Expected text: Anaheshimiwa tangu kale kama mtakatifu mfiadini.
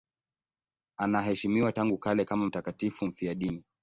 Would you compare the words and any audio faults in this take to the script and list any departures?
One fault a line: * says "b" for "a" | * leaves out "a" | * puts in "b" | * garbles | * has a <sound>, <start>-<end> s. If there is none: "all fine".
all fine